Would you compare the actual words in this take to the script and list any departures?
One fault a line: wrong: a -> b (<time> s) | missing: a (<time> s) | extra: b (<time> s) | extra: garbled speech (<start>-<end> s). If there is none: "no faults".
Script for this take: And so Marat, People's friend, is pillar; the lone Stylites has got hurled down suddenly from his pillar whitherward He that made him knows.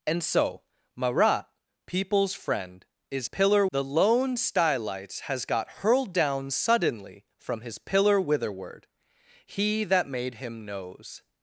no faults